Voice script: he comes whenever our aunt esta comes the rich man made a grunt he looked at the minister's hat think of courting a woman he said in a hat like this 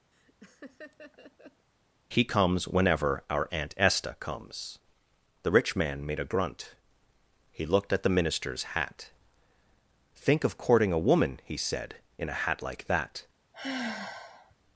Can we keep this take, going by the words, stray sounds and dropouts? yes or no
no